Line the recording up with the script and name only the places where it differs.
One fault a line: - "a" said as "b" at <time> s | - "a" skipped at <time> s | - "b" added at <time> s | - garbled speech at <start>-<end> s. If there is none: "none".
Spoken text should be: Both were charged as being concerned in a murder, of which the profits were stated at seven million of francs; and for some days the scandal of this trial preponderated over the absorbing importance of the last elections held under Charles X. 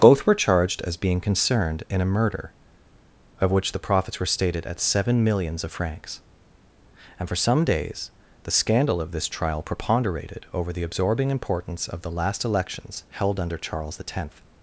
- "million" said as "millions" at 5.2 s